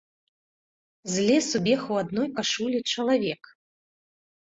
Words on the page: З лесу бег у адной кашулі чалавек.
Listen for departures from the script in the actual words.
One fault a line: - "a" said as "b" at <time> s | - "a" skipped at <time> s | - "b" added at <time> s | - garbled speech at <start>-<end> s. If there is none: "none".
none